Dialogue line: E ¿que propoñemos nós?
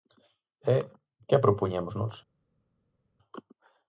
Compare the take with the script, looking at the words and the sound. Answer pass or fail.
pass